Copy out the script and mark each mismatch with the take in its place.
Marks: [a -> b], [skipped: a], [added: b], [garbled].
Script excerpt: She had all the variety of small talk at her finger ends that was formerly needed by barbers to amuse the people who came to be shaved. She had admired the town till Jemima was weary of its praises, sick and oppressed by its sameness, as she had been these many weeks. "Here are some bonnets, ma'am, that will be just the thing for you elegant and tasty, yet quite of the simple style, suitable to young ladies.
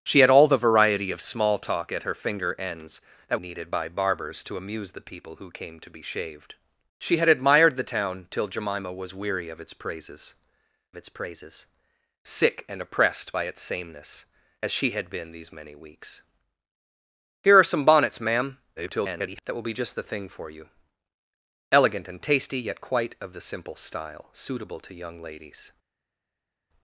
She had all the variety of small talk at her finger ends that [skipped: was formerly] needed by barbers to amuse the people who came to be shaved. She had admired the town till Jemima was weary of its praises, [added: its praises] sick and oppressed by its sameness, as she had been these many weeks. "Here are some bonnets, ma'am, [garbled] that will be just the thing for you elegant and tasty, yet quite of the simple style, suitable to young ladies.